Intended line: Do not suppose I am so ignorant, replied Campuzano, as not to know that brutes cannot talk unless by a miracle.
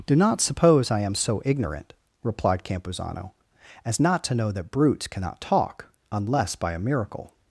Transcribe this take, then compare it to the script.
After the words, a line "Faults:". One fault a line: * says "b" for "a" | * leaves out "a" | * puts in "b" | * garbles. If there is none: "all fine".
Do not suppose I am so ignorant, replied Campuzano, as not to know that brutes cannot talk unless by a miracle.
Faults:
all fine